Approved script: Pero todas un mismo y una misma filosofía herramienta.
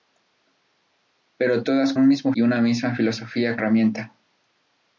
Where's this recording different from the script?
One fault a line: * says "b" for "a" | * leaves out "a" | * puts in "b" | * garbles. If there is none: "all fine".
all fine